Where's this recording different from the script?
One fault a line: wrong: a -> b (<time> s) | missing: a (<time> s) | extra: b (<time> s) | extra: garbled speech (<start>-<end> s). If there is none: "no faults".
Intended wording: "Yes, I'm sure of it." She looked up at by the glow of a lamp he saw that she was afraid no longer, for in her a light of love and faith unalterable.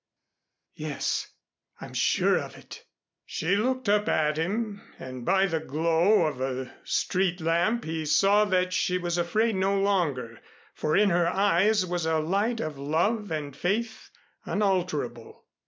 extra: him and (4.4 s)
extra: street (6.8 s)
extra: eyes was (11.3 s)